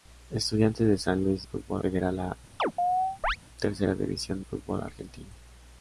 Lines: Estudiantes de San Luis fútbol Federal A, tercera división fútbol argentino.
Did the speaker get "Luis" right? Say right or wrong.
right